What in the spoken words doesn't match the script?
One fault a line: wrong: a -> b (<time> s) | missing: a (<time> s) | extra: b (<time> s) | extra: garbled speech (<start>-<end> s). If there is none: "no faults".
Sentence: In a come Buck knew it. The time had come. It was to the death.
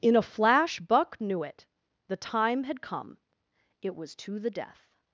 wrong: come -> flash (0.2 s)